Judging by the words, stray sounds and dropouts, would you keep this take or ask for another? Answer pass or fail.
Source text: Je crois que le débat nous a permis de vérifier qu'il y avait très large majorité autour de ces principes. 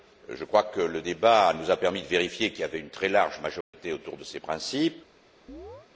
fail